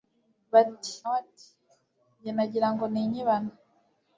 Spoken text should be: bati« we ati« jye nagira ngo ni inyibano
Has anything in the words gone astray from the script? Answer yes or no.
no